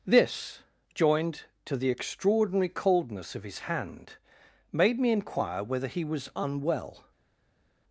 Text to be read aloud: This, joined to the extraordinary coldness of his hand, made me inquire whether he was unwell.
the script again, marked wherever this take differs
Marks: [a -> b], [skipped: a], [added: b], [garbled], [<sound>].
This, joined to the extraordinary coldness of his hand, made me inquire whether he was unwell.